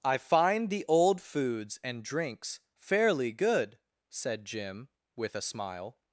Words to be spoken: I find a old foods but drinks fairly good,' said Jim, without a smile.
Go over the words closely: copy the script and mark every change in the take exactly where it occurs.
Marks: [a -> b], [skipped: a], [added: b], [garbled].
I find [a -> the] old foods [but -> and] drinks fairly good,' said Jim, [without -> with] a smile.